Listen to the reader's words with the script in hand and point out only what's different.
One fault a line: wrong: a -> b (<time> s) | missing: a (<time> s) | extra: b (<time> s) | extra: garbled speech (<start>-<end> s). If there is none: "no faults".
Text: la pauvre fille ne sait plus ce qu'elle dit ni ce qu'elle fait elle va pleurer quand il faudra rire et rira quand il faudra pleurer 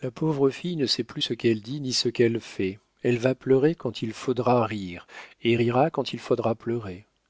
no faults